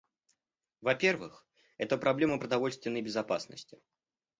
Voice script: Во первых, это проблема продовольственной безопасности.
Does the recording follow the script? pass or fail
pass